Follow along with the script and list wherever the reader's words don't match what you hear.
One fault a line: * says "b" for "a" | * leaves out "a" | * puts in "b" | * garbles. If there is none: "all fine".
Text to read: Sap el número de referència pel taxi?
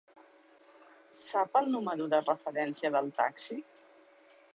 * says "del" for "pel"